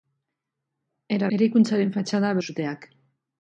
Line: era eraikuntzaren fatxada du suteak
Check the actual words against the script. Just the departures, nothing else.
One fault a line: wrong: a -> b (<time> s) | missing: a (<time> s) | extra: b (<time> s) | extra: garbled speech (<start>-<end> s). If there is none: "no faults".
no faults